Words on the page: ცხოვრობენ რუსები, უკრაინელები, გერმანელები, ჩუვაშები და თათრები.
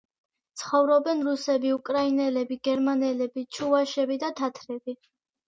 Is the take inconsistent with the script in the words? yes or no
no